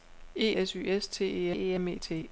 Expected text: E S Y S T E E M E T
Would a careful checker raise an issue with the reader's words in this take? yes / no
no